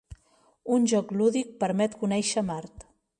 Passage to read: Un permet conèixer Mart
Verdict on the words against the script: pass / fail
fail